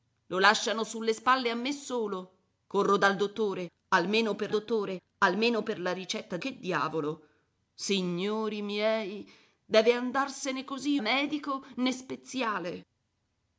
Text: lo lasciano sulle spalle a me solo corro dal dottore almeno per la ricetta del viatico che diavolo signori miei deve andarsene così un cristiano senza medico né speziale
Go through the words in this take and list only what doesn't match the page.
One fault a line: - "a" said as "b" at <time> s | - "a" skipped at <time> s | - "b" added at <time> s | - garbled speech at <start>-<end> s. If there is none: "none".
- "dottore almeno per" added at 4.5 s
- "del viatico" skipped at 6.4 s
- "un cristiano senza" skipped at 11.0 s